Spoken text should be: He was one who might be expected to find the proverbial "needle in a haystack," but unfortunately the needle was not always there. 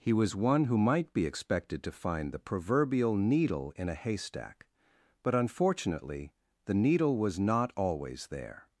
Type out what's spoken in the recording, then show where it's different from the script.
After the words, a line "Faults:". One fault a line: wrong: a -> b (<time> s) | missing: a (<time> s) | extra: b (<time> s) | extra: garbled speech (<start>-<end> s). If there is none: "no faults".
He was one who might be expected to find the proverbial "needle in a haystack," but unfortunately the needle was not always there.
Faults:
no faults